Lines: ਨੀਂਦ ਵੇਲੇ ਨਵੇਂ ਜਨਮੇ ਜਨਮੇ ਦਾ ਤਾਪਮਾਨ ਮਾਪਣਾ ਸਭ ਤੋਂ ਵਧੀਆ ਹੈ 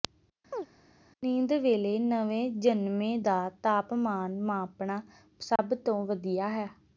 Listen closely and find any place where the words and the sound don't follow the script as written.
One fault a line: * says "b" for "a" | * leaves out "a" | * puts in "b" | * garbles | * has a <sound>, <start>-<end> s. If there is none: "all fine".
* has a chirp, 0.5-0.7 s
* leaves out "ਜਨਮੇ"
* has a dropout, 5.6-5.6 s